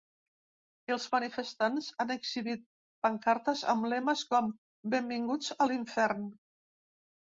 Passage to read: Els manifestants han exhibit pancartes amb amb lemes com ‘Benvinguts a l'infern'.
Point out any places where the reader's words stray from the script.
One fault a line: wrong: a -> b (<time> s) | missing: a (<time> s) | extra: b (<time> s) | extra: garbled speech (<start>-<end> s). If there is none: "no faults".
missing: amb (3.9 s)